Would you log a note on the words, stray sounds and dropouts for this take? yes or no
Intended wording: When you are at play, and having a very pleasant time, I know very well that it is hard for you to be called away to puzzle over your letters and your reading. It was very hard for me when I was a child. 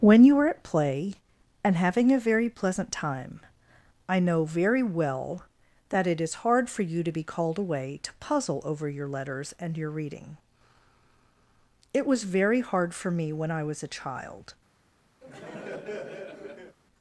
yes